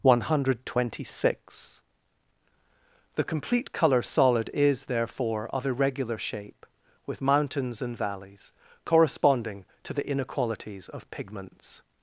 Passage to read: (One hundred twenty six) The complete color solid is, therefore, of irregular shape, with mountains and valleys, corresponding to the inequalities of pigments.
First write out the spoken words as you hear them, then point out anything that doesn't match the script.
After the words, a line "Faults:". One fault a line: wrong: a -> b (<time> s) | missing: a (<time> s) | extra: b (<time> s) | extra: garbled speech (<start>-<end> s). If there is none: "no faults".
(One hundred twenty six) The complete color solid is, therefore, of irregular shape, with mountains and valleys, corresponding to the inequalities of pigments.
Faults:
no faults